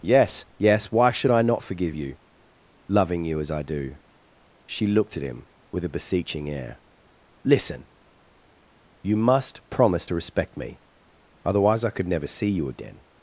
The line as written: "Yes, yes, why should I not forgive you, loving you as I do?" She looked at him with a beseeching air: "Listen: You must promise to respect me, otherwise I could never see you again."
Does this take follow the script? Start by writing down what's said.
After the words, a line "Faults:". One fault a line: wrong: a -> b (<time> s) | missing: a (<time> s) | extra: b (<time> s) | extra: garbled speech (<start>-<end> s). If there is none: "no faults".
"Yes, yes, why should I not forgive you, loving you as I do?" She looked at him with a beseeching air: "Listen: You must promise to respect me, otherwise I could never see you again."
Faults:
no faults